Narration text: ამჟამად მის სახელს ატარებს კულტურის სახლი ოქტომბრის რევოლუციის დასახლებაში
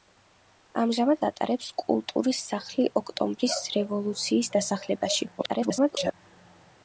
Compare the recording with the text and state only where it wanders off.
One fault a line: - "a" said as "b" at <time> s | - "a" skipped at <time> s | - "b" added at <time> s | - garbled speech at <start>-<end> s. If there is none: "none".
- "მის სახელს" skipped at 1.2 s
- garbled speech at 5.4-6.1 s